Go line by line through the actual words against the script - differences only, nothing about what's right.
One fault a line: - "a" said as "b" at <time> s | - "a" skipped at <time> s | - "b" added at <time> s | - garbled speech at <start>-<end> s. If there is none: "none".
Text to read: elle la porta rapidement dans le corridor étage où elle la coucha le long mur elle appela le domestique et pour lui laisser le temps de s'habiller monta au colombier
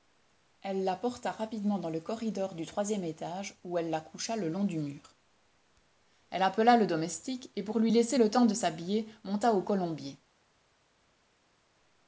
- "du troisième" added at 2.5 s
- "du" added at 4.6 s